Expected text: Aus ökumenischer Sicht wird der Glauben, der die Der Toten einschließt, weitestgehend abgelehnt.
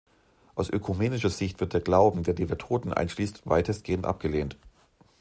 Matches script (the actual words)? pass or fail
pass